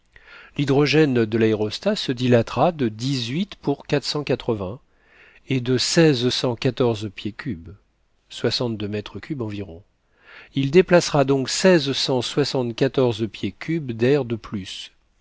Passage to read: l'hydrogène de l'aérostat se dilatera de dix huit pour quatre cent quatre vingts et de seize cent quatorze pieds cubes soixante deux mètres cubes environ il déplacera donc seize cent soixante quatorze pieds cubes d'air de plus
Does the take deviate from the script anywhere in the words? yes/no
no